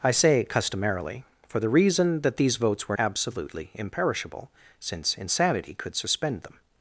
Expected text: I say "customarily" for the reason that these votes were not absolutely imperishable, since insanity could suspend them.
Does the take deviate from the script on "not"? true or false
true